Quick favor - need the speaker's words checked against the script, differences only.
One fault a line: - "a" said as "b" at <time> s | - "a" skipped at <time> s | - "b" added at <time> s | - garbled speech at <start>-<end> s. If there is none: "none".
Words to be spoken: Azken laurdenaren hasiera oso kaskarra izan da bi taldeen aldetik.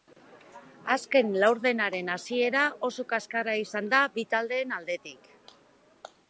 none